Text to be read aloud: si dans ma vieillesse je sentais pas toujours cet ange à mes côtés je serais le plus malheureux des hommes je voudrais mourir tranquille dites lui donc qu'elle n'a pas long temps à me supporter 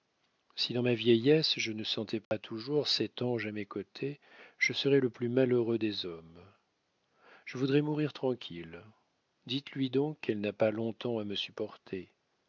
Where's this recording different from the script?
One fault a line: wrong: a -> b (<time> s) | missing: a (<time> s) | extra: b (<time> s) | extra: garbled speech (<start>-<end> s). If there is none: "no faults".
extra: ne (1.7 s)